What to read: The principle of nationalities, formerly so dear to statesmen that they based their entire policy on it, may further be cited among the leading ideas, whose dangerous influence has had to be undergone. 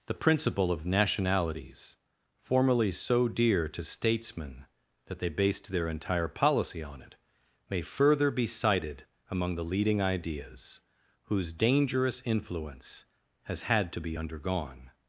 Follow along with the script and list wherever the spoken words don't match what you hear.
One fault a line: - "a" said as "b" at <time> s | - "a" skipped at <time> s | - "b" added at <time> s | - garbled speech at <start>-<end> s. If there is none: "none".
none